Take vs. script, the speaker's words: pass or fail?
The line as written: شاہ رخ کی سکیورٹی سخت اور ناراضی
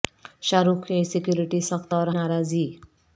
pass